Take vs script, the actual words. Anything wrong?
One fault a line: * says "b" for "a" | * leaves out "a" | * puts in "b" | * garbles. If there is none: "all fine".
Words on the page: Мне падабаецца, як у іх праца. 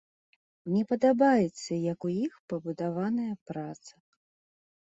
* puts in "пабудаваная"